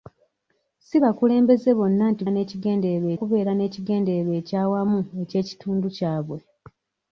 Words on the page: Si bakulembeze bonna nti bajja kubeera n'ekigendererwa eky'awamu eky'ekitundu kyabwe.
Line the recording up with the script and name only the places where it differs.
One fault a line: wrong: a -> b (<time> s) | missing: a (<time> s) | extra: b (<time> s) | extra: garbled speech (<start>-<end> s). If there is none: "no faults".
wrong: bajja -> n'ekigendererwa (2.3 s)